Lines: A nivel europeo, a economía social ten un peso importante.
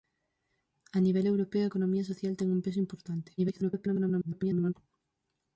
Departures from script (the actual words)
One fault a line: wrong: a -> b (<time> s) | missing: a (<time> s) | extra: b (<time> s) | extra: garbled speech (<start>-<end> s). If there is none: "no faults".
extra: garbled speech (3.4-4.7 s)